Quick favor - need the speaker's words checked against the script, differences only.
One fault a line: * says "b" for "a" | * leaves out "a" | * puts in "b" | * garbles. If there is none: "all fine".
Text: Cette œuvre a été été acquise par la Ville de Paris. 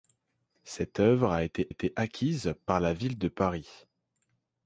all fine